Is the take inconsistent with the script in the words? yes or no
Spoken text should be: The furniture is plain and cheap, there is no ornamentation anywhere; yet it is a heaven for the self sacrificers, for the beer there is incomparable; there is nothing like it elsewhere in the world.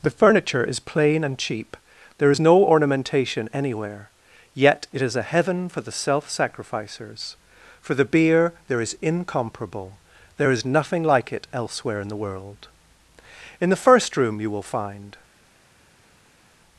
yes